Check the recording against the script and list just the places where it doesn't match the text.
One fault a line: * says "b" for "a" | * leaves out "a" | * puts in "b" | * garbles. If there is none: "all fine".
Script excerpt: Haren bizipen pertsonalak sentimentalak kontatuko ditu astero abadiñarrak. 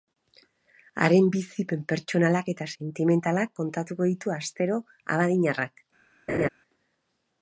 * puts in "eta"